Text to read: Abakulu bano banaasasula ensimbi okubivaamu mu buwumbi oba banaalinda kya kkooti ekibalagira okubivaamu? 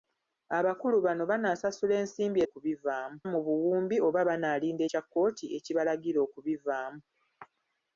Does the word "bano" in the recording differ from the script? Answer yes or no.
no